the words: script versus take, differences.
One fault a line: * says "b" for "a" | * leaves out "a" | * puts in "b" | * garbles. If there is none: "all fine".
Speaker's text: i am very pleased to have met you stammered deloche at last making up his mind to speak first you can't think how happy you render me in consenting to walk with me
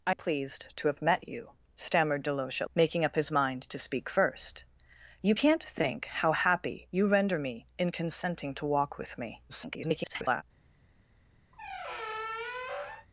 * leaves out "am very"
* leaves out "last"
* garbles